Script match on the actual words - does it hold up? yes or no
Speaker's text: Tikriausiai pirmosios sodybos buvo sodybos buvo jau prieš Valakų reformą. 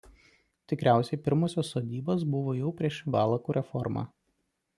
no